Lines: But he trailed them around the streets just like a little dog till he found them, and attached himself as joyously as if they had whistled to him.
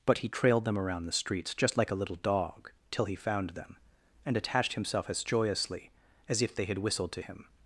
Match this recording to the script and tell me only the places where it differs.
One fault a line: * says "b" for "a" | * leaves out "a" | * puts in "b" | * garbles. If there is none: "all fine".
all fine